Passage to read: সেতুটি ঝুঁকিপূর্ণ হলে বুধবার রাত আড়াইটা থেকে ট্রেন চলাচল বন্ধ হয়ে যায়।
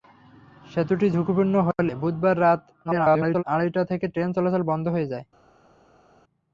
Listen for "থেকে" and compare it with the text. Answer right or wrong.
right